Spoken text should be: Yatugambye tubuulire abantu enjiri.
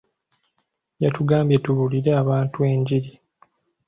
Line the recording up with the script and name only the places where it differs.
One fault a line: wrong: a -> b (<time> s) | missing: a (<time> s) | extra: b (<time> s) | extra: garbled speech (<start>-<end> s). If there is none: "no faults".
no faults